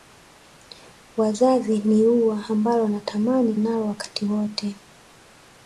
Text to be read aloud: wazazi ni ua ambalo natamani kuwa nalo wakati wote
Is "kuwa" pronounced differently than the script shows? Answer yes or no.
yes